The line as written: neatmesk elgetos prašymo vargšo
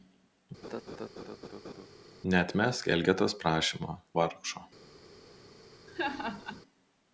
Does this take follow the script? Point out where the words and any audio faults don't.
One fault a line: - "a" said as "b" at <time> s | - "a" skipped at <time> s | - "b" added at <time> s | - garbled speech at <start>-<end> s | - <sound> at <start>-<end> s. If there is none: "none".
- laugh at 0.6-1.9 s
- laugh at 5.9-6.6 s